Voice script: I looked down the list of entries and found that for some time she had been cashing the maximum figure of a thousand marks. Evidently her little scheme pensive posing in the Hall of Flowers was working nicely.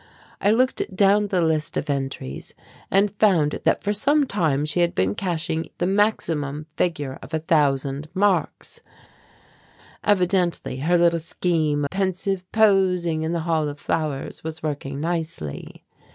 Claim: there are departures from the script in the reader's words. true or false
false